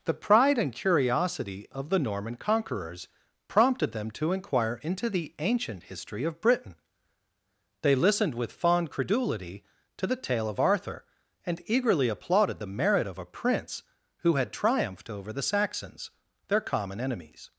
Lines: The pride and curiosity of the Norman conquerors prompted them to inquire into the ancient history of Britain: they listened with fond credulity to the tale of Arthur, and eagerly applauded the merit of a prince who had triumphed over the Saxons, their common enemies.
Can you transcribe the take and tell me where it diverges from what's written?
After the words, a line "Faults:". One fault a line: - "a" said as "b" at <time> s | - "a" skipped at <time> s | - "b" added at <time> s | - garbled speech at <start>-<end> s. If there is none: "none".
The pride and curiosity of the Norman conquerors prompted them to inquire into the ancient history of Britain: they listened with fond credulity to the tale of Arthur, and eagerly applauded the merit of a prince who had triumphed over the Saxons, their common enemies.
Faults:
none